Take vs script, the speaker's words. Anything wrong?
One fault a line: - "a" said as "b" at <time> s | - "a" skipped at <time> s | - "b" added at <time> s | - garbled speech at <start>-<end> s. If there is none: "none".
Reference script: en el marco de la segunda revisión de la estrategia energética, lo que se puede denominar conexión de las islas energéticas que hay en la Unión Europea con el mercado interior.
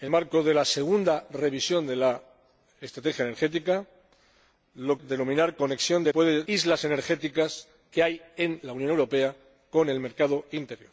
- "el" skipped at 0.1 s
- "que se puede" skipped at 5.0 s
- "las" said as "puede" at 6.1 s